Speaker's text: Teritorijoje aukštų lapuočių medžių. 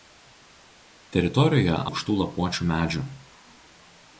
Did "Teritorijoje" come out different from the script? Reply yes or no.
no